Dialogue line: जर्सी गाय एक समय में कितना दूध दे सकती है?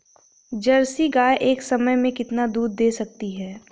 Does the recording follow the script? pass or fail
pass